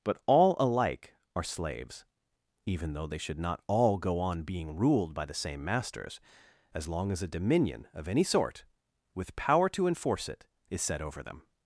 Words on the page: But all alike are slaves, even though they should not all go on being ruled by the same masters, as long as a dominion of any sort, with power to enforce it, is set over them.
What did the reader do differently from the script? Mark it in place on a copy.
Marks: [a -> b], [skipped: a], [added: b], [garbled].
But all alike are slaves, even though they should not all go on being ruled by the same masters, as long as a dominion of any sort, with power to enforce it, is set over them.